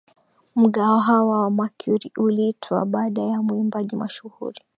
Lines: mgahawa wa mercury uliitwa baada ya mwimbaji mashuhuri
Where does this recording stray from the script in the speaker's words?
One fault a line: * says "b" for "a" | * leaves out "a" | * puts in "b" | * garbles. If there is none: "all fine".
all fine